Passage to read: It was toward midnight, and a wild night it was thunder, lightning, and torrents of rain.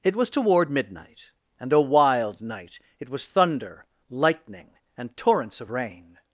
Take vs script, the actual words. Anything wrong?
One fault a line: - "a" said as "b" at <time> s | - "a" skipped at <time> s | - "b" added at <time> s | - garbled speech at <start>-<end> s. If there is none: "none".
none